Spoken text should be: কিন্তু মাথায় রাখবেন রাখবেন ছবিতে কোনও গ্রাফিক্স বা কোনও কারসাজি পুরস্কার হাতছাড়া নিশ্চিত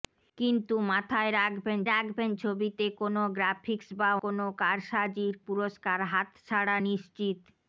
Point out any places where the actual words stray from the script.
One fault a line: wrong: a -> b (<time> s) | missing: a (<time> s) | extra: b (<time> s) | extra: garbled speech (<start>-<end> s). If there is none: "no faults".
no faults